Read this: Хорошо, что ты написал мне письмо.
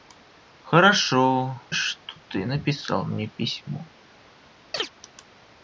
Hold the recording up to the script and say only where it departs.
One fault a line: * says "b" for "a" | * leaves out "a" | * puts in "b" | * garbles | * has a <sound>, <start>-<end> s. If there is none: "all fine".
* has a chirp, 4.7-4.9 s